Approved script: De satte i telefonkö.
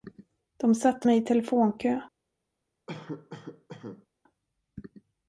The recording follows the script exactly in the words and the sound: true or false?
false